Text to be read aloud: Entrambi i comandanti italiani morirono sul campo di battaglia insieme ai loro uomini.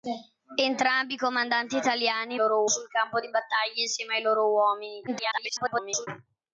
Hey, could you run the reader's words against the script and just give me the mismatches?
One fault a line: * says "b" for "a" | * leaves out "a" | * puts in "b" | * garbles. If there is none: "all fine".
* says "loro" for "morirono"
* garbles